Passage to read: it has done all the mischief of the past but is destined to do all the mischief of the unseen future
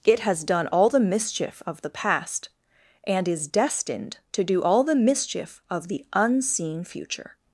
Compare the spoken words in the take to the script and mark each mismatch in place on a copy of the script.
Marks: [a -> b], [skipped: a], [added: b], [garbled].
it has done all the mischief of the past [but -> and] is destined to do all the mischief of the unseen future